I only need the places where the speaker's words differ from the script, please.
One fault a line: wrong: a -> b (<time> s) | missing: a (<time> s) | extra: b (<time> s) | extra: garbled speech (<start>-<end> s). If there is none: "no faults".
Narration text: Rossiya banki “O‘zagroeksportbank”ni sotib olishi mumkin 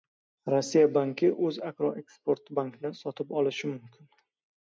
no faults